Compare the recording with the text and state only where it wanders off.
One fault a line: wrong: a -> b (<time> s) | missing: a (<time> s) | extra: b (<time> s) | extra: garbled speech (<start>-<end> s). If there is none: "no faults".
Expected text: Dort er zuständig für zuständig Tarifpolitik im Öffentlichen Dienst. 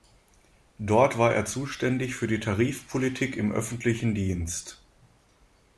extra: war (1.2 s)
wrong: zuständig -> die (2.2 s)